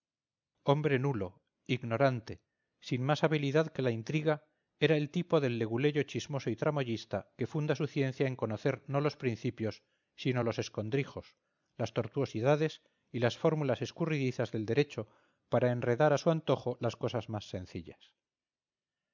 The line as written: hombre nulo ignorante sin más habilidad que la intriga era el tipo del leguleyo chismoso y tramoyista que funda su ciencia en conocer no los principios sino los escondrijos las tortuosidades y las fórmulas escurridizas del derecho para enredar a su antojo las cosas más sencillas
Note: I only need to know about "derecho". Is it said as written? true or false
true